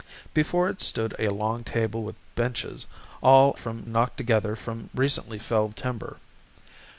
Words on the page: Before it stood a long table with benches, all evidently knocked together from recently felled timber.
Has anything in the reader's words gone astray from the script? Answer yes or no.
yes